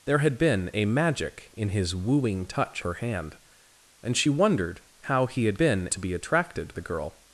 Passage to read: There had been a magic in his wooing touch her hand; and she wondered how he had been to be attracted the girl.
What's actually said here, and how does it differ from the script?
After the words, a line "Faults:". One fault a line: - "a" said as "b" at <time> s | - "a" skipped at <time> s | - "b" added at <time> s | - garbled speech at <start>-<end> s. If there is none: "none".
There had been a magic in his wooing touch her hand; and she wondered how he had been to be attracted the girl.
Faults:
none